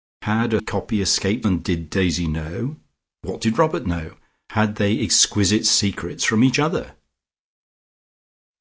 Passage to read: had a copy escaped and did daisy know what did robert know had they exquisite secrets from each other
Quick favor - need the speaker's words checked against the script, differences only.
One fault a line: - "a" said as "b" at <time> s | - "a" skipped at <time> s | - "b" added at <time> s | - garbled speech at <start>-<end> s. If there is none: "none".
none